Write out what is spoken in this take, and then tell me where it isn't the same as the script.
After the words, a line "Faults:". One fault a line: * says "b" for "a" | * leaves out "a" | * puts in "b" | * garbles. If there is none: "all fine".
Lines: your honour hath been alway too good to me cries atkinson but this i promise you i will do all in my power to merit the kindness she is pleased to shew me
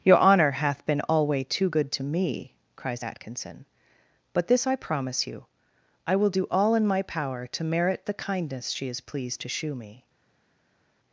your honour hath been alway too good to me cries atkinson but this i promise you i will do all in my power to merit the kindness she is pleased to shew me
Faults:
all fine